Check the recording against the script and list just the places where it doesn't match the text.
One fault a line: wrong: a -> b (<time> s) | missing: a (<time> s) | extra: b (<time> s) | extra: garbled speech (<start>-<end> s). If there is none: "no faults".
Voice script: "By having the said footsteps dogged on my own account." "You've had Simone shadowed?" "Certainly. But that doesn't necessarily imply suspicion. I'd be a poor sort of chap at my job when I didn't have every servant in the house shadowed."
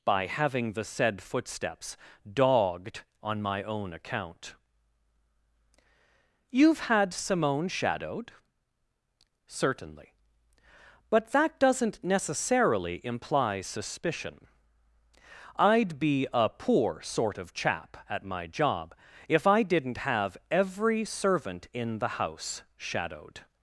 wrong: when -> if (19.3 s)